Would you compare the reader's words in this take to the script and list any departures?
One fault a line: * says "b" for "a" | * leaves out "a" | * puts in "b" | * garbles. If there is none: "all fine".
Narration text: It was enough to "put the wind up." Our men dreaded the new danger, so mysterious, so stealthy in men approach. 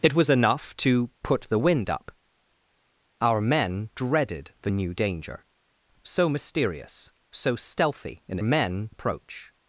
all fine